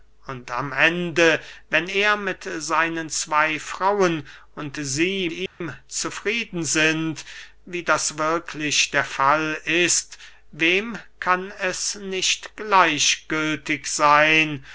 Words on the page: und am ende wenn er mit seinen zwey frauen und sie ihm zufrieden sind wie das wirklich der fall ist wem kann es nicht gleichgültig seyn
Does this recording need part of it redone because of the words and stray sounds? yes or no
yes